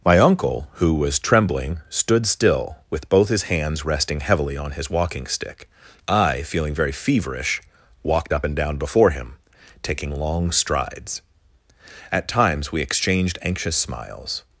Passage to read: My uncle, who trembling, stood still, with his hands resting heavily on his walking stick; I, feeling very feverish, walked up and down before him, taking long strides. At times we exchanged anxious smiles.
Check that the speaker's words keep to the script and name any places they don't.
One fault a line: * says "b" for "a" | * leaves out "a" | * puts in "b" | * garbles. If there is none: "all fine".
* puts in "was"
* puts in "both"